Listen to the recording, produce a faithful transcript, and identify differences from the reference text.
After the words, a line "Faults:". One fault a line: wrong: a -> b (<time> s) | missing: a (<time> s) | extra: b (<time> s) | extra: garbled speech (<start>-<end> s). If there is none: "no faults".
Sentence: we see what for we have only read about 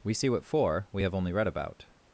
we see what for we have only read about
Faults:
no faults